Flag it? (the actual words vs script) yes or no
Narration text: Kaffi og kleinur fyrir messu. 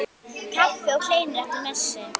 yes